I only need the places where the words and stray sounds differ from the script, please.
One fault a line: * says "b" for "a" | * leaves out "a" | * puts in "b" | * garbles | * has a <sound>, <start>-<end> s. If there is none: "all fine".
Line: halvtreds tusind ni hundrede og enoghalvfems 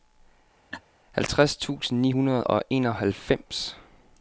* has a laugh, 0.7-0.8 s